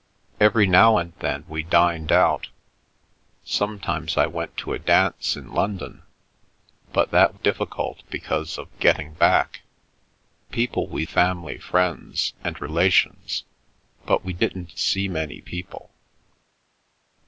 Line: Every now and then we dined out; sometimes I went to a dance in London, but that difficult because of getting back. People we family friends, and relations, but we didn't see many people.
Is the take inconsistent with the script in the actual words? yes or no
no